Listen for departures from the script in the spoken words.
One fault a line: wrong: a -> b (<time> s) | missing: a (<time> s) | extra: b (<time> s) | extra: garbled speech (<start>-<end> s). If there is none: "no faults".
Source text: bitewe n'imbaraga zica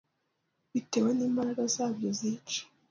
extra: zabyo (1.8 s)